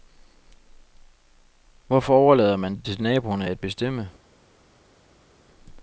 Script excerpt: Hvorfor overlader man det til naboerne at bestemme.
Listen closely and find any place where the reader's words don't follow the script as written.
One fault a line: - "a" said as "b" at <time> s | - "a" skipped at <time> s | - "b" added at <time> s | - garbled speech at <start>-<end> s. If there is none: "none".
none